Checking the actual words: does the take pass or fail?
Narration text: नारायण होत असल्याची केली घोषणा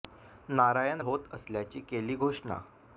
pass